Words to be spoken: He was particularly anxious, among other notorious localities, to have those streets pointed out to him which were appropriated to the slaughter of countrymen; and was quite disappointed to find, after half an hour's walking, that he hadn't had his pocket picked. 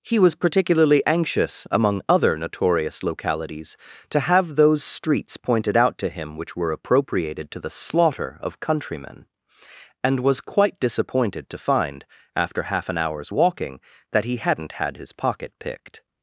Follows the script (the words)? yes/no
yes